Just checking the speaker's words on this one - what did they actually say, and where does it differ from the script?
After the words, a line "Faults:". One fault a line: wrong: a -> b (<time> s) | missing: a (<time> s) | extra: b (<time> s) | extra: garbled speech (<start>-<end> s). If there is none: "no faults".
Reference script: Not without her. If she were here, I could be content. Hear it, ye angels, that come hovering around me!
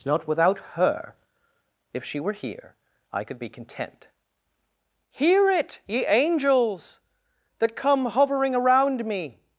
Not without her. If she were here, I could be content. Hear it, ye angels, that come hovering around me!
Faults:
no faults